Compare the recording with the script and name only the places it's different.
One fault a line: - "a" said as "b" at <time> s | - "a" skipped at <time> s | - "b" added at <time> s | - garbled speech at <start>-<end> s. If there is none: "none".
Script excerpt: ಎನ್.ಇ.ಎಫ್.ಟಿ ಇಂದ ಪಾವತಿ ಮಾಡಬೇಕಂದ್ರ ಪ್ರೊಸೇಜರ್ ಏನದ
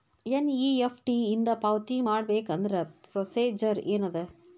none